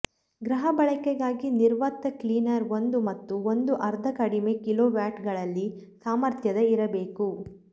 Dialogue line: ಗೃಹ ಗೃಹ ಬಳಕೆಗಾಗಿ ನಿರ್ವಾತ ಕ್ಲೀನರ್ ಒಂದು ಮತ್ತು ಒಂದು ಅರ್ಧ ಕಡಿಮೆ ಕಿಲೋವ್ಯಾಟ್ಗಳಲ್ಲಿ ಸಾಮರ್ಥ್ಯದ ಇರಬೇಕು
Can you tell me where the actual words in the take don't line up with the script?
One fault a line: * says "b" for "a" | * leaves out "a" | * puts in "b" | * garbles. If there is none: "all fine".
* leaves out "ಗೃಹ"